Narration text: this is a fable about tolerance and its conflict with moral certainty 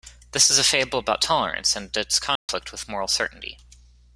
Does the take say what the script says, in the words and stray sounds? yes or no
no